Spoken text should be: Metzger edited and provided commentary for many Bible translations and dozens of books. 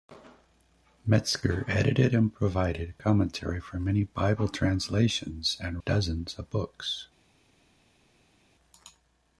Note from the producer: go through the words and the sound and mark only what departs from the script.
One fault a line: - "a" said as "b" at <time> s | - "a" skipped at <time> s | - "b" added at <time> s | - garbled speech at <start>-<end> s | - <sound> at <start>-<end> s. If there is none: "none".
none